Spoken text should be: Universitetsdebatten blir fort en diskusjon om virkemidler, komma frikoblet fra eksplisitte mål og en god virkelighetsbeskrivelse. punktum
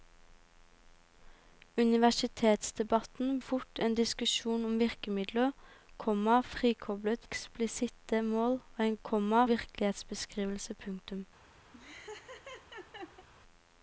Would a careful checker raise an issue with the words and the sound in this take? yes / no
yes